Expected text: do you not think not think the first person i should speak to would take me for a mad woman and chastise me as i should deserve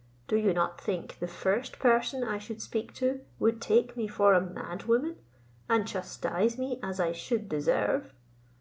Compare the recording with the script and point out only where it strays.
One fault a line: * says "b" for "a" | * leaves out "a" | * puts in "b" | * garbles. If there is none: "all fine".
* leaves out "not think"